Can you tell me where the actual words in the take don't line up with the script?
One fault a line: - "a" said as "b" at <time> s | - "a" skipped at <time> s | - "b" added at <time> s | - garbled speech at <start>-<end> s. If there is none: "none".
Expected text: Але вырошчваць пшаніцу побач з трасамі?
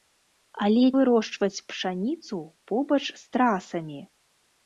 none